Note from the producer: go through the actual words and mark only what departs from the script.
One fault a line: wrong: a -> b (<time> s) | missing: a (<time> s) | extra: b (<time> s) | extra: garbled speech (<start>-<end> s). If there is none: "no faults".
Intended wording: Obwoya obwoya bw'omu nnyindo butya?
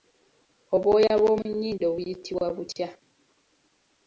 missing: obwoya (1.1 s)
extra: buyitibwa (1.9 s)